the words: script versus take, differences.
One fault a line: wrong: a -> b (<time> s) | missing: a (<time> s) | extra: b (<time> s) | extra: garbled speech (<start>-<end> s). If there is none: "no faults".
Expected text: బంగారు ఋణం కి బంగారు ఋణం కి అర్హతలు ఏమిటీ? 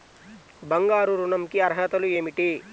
missing: బంగారు ఋణం కి (1.6 s)